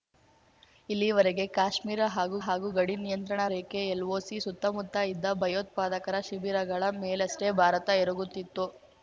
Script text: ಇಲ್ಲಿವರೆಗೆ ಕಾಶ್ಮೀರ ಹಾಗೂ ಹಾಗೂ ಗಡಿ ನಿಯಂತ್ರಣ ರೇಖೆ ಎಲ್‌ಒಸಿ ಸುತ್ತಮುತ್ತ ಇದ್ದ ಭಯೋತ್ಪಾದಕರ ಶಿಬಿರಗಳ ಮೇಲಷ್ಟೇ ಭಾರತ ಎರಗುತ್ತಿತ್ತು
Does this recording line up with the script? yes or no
yes